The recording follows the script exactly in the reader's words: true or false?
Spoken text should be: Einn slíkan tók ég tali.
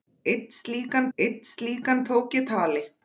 false